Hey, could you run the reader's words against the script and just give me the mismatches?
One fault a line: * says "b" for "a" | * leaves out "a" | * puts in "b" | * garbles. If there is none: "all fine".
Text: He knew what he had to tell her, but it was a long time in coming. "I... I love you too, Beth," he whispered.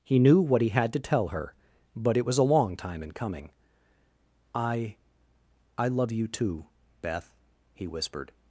all fine